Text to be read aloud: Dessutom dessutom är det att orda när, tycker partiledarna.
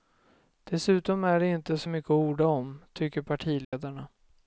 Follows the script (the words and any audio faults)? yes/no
no